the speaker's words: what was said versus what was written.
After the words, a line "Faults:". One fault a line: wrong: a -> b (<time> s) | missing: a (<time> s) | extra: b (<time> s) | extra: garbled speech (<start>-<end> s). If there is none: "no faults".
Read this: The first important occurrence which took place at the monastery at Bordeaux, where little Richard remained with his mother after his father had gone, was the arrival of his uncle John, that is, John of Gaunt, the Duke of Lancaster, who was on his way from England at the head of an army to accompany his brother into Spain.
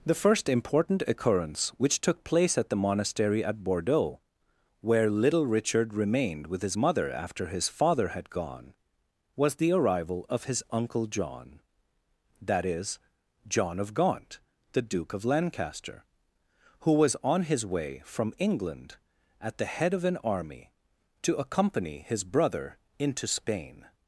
The first important occurrence which took place at the monastery at Bordeaux, where little Richard remained with his mother after his father had gone, was the arrival of his uncle John, that is, John of Gaunt, the Duke of Lancaster, who was on his way from England at the head of an army to accompany his brother into Spain.
Faults:
no faults